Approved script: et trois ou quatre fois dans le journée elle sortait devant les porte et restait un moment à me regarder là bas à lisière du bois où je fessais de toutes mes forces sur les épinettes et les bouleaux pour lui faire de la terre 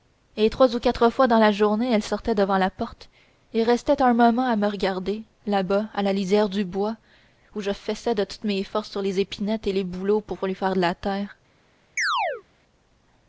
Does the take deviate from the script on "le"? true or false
true